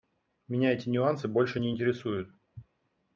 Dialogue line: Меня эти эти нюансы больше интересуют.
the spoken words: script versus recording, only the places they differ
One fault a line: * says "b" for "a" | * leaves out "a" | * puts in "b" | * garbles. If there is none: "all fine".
* leaves out "эти"
* puts in "не"